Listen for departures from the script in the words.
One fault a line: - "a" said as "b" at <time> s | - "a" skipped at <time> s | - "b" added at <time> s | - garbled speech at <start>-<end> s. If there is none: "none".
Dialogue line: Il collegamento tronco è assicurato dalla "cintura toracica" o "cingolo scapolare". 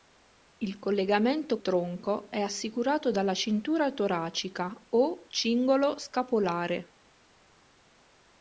none